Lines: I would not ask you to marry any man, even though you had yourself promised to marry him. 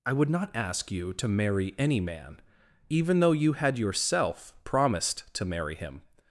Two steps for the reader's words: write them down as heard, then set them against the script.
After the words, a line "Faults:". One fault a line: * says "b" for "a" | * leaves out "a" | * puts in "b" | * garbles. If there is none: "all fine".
I would not ask you to marry any man, even though you had yourself promised to marry him.
Faults:
all fine